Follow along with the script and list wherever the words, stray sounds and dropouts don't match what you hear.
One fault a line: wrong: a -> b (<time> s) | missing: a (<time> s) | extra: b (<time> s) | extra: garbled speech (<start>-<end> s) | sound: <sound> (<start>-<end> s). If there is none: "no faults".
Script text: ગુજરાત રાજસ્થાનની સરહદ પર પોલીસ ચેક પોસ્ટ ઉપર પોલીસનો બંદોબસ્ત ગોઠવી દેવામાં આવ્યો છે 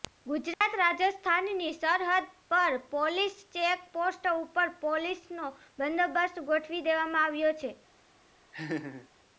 sound: dropout (0.5-0.6 s)
sound: laugh (8.5-9.1 s)